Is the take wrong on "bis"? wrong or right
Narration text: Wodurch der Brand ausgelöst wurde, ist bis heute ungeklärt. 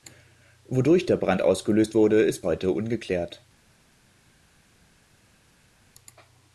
wrong